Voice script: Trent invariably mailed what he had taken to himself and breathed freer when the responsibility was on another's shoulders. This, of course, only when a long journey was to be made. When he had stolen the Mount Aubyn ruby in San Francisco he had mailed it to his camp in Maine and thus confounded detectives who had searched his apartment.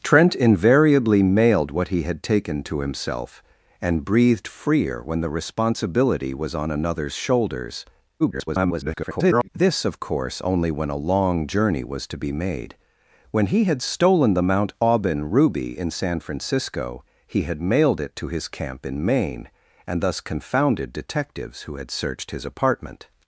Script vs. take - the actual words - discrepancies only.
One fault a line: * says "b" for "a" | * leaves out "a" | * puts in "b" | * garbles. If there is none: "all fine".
* garbles